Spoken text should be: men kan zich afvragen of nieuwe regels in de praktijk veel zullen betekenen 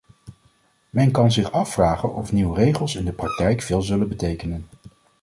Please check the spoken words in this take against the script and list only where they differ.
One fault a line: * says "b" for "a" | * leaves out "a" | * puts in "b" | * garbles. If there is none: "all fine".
all fine